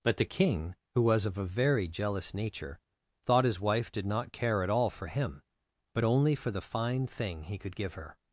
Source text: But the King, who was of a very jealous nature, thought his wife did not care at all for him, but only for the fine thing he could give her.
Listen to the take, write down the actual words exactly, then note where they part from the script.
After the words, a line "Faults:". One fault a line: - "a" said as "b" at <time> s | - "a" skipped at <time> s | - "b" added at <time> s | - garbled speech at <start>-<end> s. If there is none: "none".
But the King, who was of a very jealous nature, thought his wife did not care at all for him, but only for the fine thing he could give her.
Faults:
none